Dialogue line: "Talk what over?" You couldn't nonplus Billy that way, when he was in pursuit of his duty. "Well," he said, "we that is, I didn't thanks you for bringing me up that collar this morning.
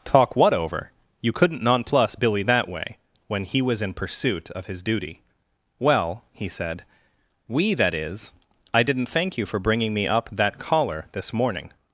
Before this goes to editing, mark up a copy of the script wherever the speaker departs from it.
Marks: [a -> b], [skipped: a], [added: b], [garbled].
"Talk what over?" You couldn't nonplus Billy that way, when he was in pursuit of his duty. "Well," he said, "we that is, I didn't [thanks -> thank] you for bringing me up that collar this morning.